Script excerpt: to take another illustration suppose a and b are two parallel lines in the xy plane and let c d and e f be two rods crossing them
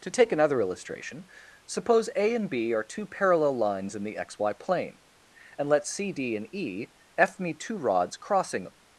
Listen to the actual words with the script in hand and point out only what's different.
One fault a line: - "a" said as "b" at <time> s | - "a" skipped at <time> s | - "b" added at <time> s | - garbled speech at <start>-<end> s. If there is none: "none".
- "be" said as "me" at 7.4 s